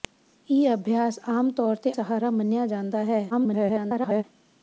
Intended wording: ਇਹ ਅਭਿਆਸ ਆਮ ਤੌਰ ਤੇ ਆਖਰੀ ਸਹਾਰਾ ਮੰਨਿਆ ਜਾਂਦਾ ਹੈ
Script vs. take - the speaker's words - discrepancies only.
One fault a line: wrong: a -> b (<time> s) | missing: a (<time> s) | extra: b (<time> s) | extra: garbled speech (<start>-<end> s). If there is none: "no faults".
missing: ਆਖਰੀ (1.9 s)
extra: garbled speech (3.3-4.2 s)